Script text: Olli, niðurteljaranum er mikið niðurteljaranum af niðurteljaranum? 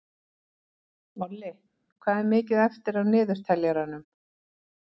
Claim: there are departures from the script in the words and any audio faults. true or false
true